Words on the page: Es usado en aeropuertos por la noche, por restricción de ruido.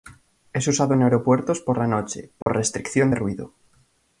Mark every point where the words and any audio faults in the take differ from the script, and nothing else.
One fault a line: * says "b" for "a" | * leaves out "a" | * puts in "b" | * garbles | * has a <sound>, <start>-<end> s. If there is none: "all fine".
* has a dropout, 2.4-2.5 s